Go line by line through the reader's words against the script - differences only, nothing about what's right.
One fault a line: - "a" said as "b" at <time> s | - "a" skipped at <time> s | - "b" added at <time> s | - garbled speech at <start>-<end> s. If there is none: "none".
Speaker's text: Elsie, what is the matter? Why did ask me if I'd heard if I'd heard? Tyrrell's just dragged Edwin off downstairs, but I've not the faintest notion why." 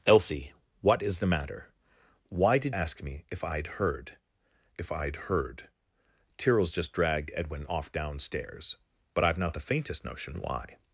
none